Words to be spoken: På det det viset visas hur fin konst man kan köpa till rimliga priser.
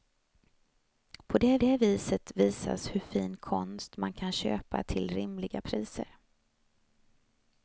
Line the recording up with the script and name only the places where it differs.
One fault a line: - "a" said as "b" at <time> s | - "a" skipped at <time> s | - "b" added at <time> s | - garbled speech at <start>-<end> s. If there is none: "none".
none